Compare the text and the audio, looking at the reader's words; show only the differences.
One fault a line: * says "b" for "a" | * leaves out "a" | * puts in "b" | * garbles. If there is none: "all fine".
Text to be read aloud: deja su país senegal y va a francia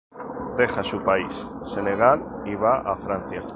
all fine